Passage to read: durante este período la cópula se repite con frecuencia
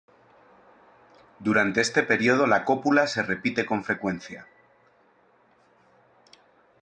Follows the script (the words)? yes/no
yes